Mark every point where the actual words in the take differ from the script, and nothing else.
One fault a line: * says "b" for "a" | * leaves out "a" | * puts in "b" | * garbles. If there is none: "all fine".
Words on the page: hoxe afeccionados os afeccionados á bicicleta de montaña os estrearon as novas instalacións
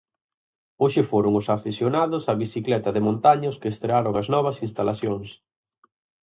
* says "foron" for "afeccionados"
* puts in "que"